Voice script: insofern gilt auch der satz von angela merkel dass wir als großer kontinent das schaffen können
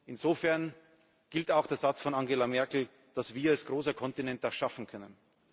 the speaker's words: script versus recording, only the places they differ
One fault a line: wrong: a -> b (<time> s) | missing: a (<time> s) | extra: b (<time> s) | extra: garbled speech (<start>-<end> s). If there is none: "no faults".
no faults